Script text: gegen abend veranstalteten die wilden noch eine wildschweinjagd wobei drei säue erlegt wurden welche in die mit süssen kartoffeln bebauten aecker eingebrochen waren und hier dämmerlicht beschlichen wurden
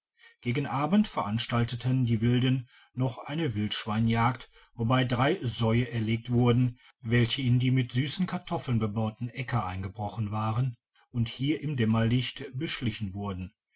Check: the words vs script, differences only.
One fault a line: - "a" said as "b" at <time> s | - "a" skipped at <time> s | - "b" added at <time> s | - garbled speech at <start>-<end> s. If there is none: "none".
- "im" added at 11.6 s